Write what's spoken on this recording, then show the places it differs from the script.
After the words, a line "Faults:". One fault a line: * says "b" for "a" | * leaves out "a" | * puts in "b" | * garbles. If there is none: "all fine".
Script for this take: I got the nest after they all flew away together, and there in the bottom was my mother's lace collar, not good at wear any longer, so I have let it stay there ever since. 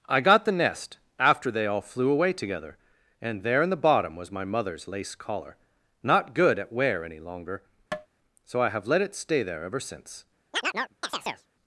I got the nest after they all flew away together, and there in the bottom was my mother's lace collar, not good at wear any longer, so I have let it stay there ever since.
Faults:
all fine